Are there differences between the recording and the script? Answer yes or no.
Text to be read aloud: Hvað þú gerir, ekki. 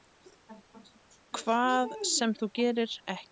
yes